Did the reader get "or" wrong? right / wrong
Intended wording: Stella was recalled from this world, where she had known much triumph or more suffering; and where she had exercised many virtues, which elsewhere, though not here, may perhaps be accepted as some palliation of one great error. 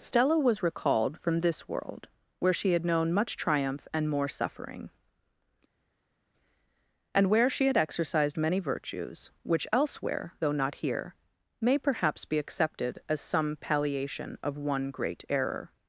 wrong